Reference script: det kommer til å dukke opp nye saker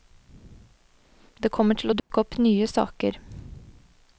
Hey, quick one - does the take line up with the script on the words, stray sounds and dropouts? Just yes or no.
no